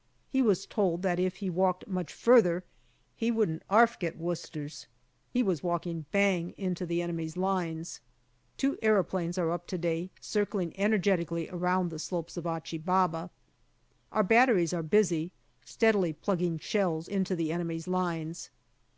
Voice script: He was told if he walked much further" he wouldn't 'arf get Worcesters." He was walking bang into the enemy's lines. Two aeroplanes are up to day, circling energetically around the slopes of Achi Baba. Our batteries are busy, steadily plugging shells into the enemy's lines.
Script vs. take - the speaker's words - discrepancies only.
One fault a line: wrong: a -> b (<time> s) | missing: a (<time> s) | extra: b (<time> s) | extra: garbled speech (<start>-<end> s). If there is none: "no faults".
extra: that (1.0 s)